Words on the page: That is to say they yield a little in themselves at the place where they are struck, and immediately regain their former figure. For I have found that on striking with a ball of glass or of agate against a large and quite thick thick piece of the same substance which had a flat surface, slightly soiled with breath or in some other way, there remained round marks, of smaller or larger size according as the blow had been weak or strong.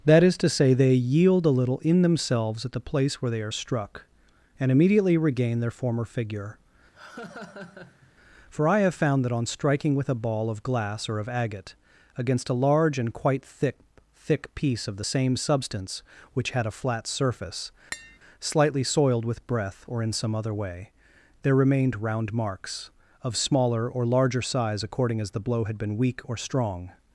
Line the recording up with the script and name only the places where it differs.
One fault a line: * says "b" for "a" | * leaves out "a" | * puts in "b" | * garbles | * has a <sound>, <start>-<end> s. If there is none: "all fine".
* has a laugh, 6.9-8.1 s
* has a tap, 17.9-18.2 s